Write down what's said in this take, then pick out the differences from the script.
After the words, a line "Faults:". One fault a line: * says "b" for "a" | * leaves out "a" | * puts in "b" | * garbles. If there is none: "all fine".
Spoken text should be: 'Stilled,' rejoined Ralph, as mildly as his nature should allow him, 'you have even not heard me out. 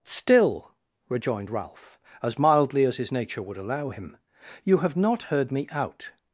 'Still,' rejoined Ralph, as mildly as his nature would allow him, 'you have not heard me out.
Faults:
* says "Still" for "Stilled"
* says "would" for "should"
* leaves out "even"